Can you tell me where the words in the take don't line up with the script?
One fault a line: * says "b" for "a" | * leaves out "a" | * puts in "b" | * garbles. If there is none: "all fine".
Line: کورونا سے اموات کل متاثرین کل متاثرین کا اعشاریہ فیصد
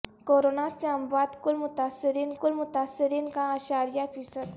all fine